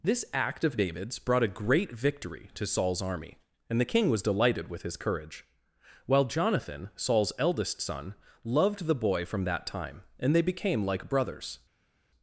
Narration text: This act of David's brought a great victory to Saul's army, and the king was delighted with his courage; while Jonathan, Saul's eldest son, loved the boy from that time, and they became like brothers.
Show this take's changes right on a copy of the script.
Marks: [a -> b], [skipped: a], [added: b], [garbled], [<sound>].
This act of David's brought a great victory to Saul's army, and the king was delighted with his courage; while Jonathan, Saul's eldest son, loved the boy from that time, and they became like brothers.